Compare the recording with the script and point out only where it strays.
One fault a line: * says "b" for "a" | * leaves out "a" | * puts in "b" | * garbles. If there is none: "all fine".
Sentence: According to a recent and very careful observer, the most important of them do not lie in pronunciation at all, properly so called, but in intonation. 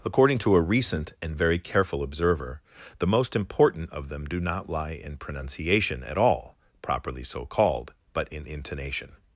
all fine